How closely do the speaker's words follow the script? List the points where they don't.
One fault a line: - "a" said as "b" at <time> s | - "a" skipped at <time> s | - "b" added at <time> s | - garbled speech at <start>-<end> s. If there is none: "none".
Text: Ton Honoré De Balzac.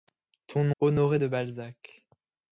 none